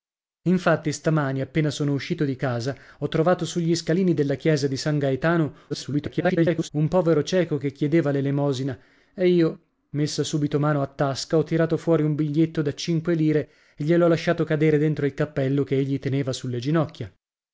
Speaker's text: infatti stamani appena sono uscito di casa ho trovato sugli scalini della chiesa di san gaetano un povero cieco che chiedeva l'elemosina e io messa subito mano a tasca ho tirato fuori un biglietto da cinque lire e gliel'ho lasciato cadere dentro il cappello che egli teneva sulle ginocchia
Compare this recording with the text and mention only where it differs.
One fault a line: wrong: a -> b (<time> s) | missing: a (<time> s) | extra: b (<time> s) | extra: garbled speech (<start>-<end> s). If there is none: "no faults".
extra: garbled speech (5.7-6.7 s)